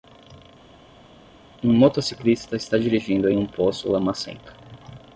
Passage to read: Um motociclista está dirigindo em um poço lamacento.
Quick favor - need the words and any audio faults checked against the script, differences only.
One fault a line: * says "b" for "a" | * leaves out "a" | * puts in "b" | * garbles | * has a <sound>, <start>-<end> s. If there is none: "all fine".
all fine